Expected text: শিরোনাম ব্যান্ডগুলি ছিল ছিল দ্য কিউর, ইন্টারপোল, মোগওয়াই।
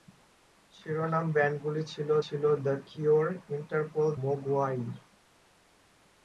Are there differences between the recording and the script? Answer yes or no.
no